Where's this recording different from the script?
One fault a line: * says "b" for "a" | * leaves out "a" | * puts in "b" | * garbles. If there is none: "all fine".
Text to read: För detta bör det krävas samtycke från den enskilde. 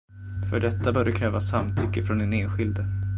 all fine